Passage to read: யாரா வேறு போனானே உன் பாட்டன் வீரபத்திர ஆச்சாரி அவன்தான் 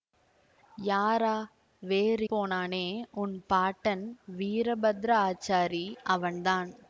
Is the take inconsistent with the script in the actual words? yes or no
no